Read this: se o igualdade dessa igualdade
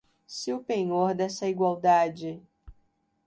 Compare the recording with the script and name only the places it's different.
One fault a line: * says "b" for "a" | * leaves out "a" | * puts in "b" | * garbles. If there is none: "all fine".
* says "penhor" for "igualdade"